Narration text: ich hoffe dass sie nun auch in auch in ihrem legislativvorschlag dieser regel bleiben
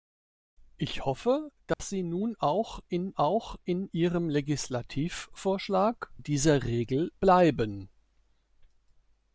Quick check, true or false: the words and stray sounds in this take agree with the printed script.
false